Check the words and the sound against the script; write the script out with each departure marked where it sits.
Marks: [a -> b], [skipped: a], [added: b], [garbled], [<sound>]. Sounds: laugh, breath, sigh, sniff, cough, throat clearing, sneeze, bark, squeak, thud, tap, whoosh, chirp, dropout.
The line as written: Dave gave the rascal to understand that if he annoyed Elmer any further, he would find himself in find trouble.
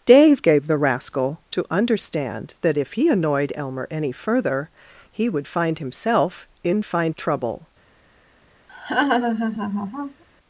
Dave gave the rascal to understand that if he annoyed Elmer any further, he would find himself in find trouble. [laugh]